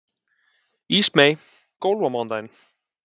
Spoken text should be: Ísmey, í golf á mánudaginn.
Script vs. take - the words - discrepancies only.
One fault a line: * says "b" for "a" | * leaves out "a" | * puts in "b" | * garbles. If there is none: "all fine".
all fine